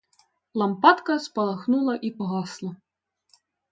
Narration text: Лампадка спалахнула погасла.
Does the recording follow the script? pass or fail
fail